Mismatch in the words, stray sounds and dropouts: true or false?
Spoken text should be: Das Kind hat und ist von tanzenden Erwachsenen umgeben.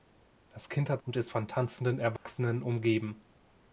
true